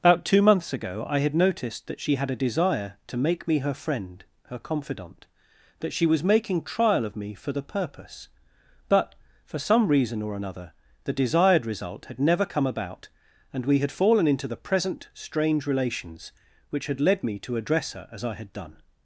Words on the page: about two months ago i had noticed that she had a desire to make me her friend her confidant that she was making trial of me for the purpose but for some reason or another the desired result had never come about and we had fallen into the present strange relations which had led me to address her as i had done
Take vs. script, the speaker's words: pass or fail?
pass